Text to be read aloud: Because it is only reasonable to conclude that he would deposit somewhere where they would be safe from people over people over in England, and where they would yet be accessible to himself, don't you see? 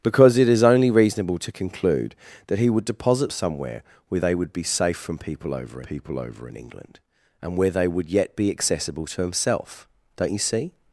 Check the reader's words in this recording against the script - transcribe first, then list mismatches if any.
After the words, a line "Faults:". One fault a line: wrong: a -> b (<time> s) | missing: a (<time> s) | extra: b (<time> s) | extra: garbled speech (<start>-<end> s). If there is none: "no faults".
Because it is only reasonable to conclude that he would deposit somewhere where they would be safe from people over people over in England, and where they would yet be accessible to himself, don't you see?
Faults:
no faults